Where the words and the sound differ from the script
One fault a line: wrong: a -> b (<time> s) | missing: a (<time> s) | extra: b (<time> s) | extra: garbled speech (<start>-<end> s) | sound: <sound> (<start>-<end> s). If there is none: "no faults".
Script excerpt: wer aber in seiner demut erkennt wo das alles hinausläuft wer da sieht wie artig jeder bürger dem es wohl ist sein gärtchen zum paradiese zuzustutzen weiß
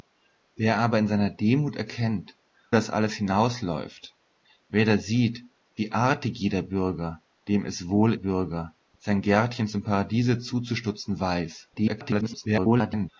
missing: wo (2.4 s)
wrong: ist -> bürger (8.1 s)
extra: garbled speech (11.7-13.1 s)